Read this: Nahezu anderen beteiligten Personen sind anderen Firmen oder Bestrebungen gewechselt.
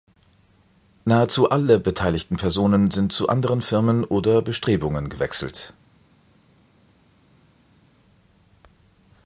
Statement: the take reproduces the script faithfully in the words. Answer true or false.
false